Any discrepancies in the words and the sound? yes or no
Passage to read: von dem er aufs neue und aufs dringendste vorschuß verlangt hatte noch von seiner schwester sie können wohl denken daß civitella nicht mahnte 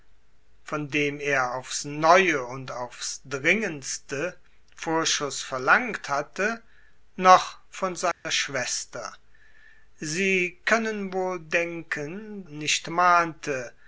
yes